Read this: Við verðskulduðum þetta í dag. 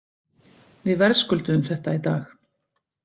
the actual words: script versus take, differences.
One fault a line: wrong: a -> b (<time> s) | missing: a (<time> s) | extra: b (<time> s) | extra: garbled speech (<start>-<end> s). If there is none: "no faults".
no faults